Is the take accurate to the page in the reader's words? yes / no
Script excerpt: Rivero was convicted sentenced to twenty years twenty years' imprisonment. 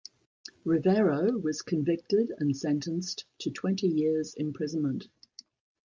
no